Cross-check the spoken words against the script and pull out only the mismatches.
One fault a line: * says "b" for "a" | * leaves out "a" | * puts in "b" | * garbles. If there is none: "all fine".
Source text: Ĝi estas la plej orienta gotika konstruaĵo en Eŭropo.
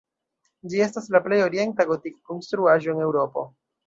all fine